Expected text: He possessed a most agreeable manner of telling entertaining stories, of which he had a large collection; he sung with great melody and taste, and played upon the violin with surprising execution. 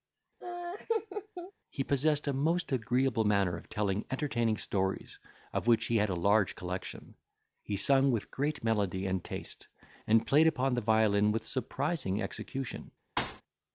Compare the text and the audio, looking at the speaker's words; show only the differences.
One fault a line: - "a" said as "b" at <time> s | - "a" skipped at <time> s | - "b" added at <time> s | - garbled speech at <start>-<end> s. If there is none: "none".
none